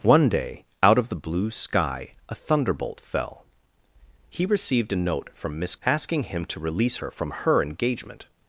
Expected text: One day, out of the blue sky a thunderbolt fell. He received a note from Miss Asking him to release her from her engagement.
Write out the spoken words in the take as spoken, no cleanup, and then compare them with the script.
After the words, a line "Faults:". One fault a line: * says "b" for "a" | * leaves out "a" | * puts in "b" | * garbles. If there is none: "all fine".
One day, out of the blue sky a thunderbolt fell. He received a note from Miss Asking him to release her from her engagement.
Faults:
all fine